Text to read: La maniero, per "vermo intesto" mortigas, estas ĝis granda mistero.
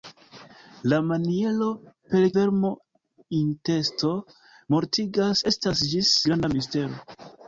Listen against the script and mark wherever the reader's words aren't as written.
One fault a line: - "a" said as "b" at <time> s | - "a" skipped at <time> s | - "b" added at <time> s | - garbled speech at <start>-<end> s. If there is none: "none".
none